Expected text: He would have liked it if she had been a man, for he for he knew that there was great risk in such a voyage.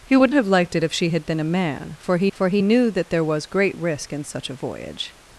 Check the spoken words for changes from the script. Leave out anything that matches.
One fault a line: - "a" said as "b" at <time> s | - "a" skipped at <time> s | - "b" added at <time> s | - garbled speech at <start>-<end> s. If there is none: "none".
none